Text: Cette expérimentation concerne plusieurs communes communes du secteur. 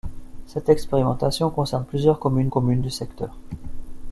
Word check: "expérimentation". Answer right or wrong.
right